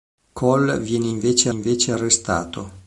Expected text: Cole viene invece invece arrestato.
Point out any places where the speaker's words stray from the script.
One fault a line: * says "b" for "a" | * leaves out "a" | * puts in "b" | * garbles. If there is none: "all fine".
all fine